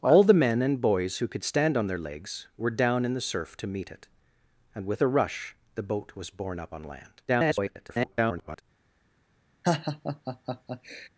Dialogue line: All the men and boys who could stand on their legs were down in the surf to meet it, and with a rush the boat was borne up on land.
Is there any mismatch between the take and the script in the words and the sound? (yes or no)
yes